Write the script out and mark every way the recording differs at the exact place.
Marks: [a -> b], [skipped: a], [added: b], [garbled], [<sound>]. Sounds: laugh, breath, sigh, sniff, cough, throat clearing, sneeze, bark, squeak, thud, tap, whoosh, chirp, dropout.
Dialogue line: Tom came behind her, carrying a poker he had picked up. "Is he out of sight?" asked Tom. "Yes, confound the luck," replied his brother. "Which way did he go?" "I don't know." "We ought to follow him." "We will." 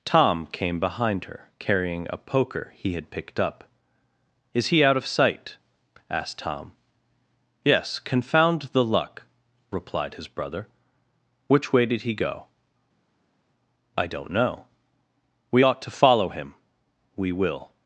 Tom came behind her, carrying a poker he had picked up. "Is he out of sight?" asked Tom. "Yes, confound the luck," replied his brother. "Which way did he go?" "I don't know." "We ought to follow him." "We will."